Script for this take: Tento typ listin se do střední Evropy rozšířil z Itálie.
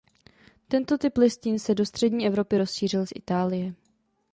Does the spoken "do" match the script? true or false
true